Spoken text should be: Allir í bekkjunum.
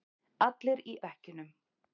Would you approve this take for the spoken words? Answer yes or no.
yes